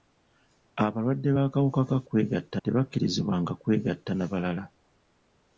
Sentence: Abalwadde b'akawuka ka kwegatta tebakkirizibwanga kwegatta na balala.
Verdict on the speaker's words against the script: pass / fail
pass